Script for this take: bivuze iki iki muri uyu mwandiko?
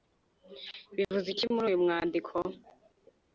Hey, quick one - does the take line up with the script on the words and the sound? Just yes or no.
no